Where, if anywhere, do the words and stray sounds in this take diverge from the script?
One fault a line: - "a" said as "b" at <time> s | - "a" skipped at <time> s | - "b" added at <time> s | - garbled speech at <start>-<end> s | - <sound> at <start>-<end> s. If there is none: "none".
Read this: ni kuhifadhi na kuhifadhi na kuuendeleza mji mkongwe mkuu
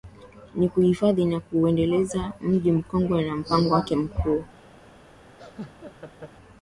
- "kuhifadhi na" skipped at 1.4 s
- "na mpango wake" added at 3.2 s
- laugh at 5.4-6.3 s